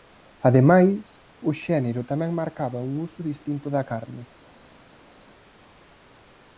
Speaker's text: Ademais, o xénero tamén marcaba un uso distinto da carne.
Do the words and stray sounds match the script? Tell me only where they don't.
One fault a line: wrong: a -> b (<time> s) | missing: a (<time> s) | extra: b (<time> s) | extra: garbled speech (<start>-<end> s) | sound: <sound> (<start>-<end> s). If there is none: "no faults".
no faults